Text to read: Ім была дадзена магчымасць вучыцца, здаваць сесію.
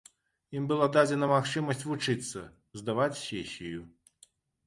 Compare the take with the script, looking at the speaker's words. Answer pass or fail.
pass